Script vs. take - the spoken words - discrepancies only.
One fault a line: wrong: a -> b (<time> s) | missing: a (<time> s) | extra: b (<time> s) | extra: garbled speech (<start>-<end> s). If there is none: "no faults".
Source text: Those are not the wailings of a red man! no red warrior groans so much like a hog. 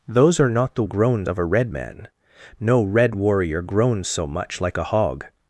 wrong: wailings -> groans (0.8 s)